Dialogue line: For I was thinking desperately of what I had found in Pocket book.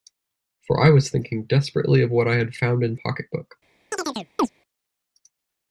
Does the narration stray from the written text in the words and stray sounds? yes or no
yes